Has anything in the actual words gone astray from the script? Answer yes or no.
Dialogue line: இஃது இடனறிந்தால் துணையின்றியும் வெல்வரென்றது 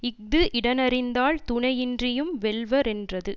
no